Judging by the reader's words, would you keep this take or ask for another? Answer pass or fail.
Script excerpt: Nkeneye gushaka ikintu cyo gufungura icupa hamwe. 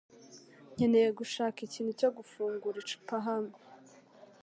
pass